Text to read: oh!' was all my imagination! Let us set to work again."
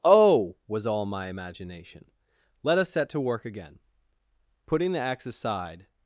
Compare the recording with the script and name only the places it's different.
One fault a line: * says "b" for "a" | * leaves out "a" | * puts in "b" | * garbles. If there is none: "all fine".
* puts in "Putting the axe aside"